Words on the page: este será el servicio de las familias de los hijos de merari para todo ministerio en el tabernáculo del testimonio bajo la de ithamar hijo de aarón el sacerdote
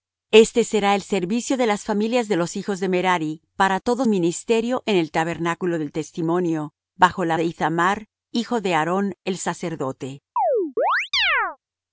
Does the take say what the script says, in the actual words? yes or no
yes